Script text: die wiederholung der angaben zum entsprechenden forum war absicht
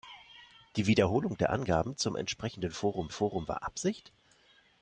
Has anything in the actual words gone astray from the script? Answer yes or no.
yes